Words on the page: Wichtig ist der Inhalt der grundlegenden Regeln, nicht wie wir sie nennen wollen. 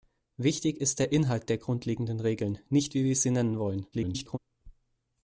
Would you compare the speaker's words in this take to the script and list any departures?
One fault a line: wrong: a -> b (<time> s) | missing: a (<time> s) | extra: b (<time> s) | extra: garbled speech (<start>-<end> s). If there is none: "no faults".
extra: garbled speech (3.9-4.4 s)